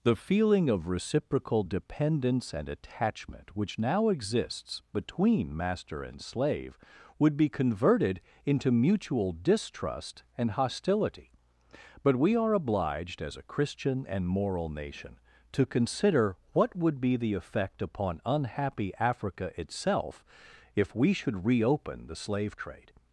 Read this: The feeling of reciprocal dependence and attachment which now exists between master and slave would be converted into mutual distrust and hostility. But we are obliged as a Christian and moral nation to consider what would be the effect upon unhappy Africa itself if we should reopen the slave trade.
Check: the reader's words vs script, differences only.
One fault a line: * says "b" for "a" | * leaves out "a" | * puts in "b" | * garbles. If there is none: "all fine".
all fine